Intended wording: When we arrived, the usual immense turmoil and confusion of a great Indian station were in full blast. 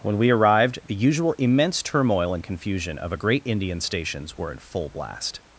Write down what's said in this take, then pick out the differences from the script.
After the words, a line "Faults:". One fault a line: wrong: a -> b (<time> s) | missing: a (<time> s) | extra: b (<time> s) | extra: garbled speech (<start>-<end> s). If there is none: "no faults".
When we arrived, the usual immense turmoil and confusion of a great Indian stations were in full blast.
Faults:
wrong: station -> stations (3.8 s)